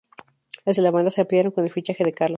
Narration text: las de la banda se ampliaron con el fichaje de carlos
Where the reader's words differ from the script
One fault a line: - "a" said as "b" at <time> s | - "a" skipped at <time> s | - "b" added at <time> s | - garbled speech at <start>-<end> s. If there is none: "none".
none